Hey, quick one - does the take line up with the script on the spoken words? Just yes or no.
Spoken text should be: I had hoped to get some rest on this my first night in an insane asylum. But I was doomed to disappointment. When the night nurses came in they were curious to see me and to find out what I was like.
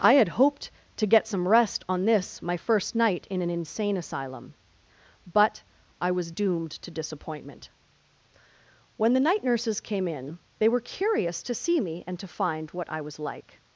no